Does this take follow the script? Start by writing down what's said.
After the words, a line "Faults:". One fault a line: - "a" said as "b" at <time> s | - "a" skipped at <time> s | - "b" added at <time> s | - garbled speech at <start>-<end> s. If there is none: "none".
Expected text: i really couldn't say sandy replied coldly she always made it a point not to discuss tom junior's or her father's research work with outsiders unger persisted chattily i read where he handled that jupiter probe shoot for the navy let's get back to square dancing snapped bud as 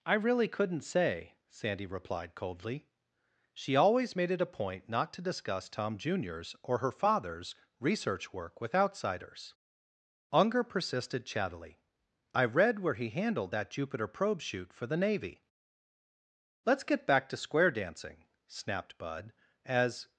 i really couldn't say sandy replied coldly she always made it a point not to discuss tom junior's or her father's research work with outsiders unger persisted chattily i read where he handled that jupiter probe shoot for the navy let's get back to square dancing snapped bud as
Faults:
none